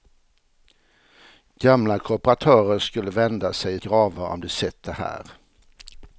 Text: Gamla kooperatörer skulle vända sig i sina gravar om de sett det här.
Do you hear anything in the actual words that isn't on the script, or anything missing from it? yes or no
yes